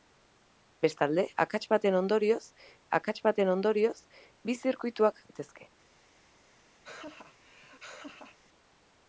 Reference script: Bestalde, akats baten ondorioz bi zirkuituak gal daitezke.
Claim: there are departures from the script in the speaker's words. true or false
true